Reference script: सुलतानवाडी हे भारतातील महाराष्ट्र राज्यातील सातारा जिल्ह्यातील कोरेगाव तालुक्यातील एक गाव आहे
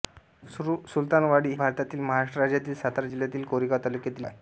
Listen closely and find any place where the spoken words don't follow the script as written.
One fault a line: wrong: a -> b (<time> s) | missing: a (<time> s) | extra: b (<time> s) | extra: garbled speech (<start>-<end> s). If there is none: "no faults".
missing: हे (1.5 s)
missing: एक गाव (4.3 s)